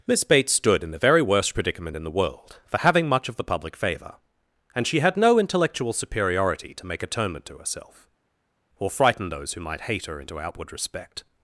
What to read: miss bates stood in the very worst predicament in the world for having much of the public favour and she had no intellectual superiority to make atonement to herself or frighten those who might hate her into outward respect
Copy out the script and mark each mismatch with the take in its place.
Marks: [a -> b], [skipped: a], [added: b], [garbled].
miss bates stood in the very worst predicament in the world for having much of the public favour and she had no intellectual superiority to make atonement to herself or frighten those who might hate her into outward respect